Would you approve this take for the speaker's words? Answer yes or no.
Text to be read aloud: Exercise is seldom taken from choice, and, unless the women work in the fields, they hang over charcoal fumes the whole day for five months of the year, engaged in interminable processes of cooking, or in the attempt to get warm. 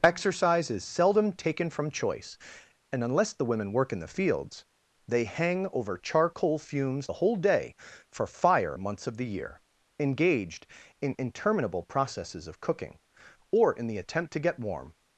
no